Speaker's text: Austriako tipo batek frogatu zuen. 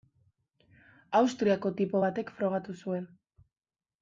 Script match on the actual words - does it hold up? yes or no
yes